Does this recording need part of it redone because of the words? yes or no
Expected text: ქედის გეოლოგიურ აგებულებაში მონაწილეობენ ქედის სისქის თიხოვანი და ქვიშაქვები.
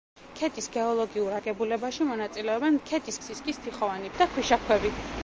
no